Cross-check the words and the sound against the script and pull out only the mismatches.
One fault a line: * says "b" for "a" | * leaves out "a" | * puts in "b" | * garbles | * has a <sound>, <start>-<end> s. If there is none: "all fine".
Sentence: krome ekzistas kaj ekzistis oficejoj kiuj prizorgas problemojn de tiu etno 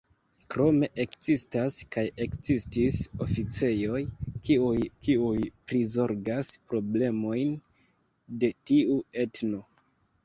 * puts in "kiuj"